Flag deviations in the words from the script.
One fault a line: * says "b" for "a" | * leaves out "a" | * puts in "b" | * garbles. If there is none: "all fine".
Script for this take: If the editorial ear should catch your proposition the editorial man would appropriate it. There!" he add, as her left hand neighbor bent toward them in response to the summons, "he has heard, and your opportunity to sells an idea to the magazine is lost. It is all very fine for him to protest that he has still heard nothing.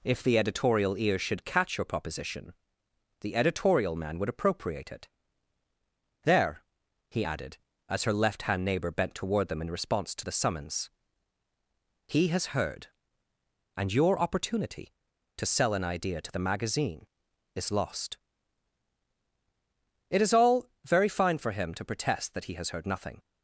* says "added" for "add"
* says "sell" for "sells"
* leaves out "still"